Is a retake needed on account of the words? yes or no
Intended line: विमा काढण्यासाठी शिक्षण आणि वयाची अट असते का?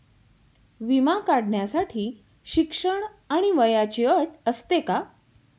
no